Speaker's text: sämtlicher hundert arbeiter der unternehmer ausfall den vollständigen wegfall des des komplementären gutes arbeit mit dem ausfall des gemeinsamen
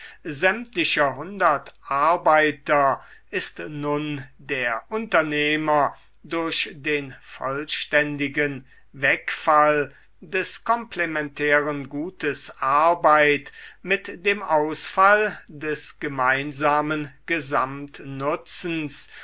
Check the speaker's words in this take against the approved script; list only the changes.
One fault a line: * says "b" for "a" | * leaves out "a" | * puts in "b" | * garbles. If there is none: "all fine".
* puts in "ist nun"
* says "durch" for "ausfall"
* leaves out "des"